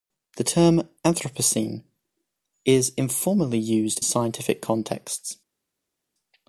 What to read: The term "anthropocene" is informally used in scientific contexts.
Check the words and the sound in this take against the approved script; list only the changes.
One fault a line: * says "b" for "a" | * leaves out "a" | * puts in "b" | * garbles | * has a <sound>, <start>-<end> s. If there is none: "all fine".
* leaves out "in"